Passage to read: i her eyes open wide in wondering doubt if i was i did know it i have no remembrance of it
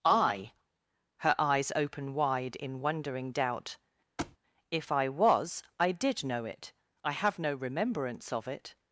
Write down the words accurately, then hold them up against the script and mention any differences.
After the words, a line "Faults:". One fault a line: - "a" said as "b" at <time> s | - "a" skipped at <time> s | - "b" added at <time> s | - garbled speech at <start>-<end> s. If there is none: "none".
i her eyes open wide in wondering doubt if i was i did know it i have no remembrance of it
Faults:
none